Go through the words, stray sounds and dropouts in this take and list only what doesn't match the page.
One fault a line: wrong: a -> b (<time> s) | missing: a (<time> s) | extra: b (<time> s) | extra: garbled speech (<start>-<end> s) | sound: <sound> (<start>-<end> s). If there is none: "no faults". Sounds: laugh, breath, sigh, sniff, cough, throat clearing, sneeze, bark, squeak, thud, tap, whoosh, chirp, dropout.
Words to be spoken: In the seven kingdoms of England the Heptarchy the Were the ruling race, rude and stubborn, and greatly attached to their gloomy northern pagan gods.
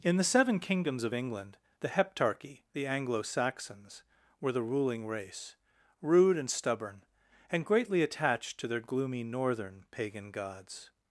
extra: Anglo Saxons (2.9 s)